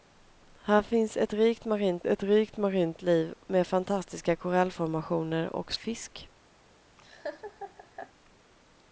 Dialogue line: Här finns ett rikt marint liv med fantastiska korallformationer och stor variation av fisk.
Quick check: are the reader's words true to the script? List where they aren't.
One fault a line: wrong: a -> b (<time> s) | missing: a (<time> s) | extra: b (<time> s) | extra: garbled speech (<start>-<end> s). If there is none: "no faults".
extra: ett rikt marint (2.1 s)
missing: stor variation av (5.7 s)